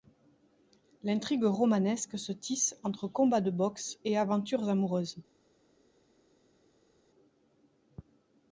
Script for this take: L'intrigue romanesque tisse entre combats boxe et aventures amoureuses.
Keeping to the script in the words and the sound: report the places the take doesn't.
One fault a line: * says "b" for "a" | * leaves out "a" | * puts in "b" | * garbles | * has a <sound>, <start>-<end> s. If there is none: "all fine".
* puts in "se"
* puts in "de"